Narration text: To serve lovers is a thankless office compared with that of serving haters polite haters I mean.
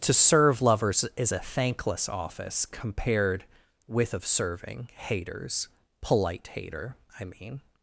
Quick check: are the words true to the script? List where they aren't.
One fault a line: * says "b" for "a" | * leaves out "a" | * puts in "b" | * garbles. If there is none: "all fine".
* leaves out "that"
* says "hater" for "haters"